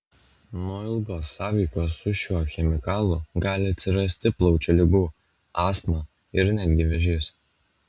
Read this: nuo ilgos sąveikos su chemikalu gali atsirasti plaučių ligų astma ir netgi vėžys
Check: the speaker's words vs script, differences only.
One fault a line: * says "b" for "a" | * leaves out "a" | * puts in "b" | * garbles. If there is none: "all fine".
* puts in "šiuo"